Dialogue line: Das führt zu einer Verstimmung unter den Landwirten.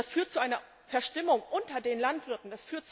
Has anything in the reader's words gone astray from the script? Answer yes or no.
no